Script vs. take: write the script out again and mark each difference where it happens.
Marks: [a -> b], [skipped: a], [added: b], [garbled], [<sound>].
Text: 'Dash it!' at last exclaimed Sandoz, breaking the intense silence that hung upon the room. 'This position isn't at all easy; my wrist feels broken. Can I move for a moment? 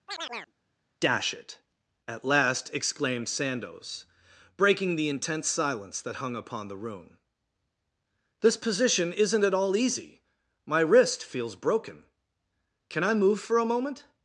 [chirp] 'Dash it!' at last exclaimed Sandoz, breaking the intense silence that hung upon the room. 'This position isn't at all easy; my wrist feels broken. Can I move for a moment?